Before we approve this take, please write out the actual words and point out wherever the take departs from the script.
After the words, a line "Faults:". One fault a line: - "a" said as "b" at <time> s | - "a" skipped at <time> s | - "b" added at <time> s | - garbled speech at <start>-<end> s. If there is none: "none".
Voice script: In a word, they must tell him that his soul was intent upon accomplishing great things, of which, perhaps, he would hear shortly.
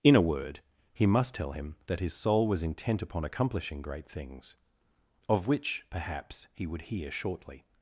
In a word, he must tell him that his soul was intent upon accomplishing great things, of which, perhaps, he would hear shortly.
Faults:
- "they" said as "he" at 0.9 s